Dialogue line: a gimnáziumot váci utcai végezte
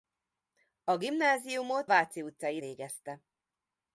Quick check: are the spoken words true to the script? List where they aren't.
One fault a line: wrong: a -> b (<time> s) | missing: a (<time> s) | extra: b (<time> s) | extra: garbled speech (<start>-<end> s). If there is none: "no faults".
no faults